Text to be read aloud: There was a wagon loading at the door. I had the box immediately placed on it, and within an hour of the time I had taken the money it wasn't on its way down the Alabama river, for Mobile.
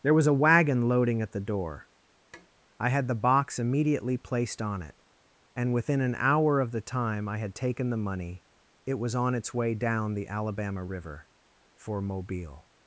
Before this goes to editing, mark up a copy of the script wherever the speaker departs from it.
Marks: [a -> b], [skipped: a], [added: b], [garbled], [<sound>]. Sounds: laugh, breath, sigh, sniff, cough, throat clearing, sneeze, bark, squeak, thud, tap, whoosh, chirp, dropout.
There was a wagon loading at the door. [tap] I had the box immediately placed on it, and within an hour of the time I had taken the money it [wasn't -> was] on its way down the Alabama river, for Mobile.